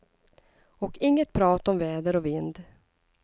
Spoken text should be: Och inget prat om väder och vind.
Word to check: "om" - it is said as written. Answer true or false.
true